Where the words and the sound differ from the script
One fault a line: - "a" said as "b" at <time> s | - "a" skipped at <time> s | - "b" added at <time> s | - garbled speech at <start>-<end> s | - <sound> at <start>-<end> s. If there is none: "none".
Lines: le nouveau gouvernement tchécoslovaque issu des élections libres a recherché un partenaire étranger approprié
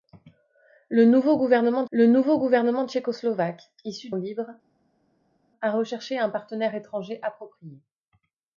- "le nouveau gouvernement" added at 1.9 s
- "des élections" skipped at 4.1 s